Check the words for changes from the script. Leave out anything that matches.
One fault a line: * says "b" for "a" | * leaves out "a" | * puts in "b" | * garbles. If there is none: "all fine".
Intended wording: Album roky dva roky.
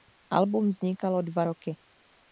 * says "vznikalo" for "roky"